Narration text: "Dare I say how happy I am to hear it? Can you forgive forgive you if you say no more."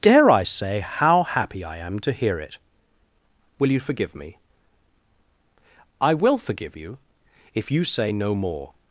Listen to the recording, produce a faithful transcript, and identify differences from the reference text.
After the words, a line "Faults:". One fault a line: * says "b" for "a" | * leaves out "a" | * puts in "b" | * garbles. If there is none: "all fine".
"Dare I say how happy I am to hear it? Will you forgive me?" "I will forgive you if you say no more."
Faults:
* says "Will" for "Can"
* puts in "me I will"